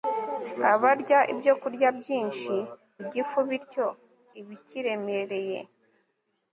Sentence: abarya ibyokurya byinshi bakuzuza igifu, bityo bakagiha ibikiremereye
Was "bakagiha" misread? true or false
true